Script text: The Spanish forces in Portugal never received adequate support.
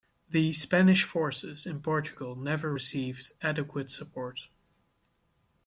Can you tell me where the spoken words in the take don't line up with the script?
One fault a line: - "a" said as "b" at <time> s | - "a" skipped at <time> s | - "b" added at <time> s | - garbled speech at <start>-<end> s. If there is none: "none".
none